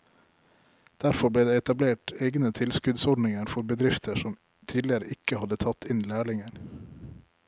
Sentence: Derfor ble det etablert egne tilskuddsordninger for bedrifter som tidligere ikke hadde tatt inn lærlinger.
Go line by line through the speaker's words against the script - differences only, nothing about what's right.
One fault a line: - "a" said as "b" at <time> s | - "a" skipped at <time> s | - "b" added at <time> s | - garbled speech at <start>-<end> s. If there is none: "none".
none